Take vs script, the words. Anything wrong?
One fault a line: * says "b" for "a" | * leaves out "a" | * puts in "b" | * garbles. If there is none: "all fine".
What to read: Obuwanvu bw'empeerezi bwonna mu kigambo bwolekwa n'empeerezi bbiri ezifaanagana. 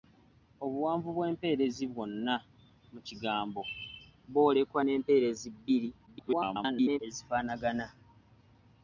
* garbles